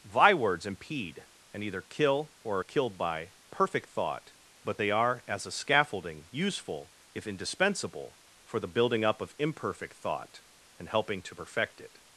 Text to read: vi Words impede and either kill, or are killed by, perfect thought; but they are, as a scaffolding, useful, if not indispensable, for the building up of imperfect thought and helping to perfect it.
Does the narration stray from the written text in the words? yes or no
yes